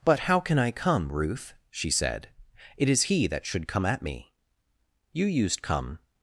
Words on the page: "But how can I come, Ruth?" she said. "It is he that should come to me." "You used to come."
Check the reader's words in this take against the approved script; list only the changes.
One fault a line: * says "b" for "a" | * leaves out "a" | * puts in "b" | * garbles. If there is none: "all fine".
* says "at" for "to"
* leaves out "to"